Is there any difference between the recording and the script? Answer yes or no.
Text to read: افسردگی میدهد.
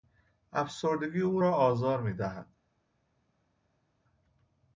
yes